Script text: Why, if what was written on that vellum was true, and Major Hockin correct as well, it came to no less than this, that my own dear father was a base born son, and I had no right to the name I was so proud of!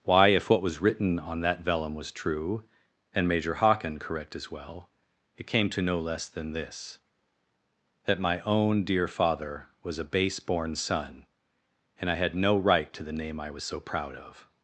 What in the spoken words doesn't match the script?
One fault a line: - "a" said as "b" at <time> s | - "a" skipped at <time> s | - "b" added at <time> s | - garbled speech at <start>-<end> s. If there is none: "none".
none